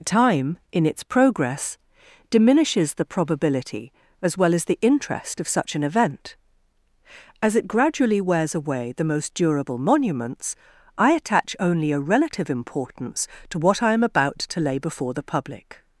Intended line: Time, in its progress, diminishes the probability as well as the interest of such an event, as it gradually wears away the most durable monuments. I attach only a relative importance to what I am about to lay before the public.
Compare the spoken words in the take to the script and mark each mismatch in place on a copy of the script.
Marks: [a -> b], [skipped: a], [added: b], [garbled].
Time, in its progress, diminishes the probability as well as the interest of such an event, as it gradually wears away the most durable monuments. I attach only a relative importance to what I am about to lay before the public.